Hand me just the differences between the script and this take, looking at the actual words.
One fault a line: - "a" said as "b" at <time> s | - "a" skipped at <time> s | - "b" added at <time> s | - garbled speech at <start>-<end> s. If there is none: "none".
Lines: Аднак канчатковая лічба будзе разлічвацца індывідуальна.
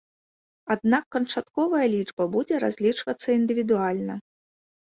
none